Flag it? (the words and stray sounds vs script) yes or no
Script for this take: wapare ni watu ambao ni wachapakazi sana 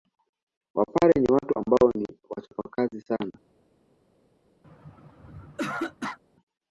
yes